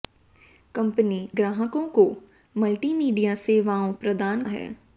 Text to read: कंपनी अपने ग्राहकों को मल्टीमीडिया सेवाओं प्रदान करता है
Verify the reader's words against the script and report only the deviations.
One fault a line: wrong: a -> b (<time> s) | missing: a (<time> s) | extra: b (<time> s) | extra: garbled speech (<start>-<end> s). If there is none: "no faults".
missing: अपने (1.2 s)
missing: करता (4.4 s)